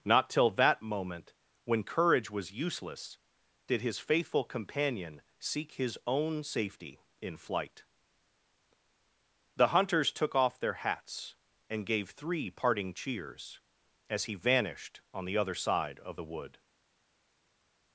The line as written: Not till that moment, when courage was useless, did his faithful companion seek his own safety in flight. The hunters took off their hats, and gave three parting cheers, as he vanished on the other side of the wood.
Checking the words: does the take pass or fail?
pass